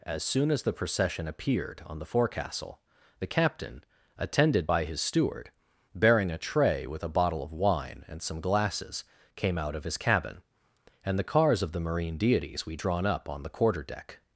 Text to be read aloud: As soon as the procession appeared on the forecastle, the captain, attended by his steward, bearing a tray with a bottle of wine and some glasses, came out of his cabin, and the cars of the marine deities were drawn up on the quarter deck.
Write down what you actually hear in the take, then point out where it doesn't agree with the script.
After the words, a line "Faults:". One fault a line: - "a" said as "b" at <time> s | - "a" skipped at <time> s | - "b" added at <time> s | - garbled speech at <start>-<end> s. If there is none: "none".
As soon as the procession appeared on the forecastle, the captain, attended by his steward, bearing a tray with a bottle of wine and some glasses, came out of his cabin, and the cars of the marine deities we drawn up on the quarter deck.
Faults:
- "were" said as "we" at 12.6 s